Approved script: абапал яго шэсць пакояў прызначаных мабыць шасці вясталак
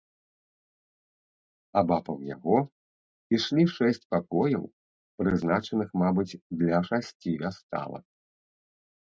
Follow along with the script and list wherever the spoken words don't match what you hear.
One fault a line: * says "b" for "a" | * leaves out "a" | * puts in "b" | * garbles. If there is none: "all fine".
* puts in "ішлі"
* puts in "для"